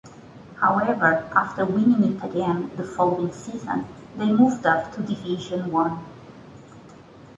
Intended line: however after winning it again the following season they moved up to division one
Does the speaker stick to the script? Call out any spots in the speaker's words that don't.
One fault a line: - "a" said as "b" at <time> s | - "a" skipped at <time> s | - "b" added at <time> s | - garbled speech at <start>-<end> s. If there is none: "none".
none